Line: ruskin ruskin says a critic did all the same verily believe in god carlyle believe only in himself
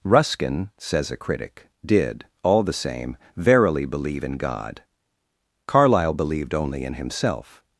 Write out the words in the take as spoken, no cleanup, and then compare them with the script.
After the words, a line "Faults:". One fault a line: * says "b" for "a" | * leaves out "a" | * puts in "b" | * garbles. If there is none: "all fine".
ruskin says a critic did all the same verily believe in god carlyle believed only in himself
Faults:
* leaves out "ruskin"
* says "believed" for "believe"